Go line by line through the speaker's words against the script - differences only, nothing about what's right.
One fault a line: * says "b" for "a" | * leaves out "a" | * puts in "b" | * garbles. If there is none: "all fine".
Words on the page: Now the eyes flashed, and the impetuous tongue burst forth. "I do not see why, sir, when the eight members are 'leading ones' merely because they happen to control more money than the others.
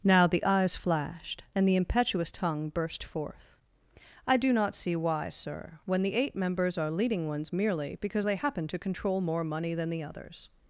all fine